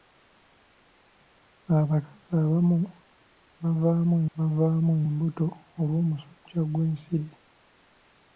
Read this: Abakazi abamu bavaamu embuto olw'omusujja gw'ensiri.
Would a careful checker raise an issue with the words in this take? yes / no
yes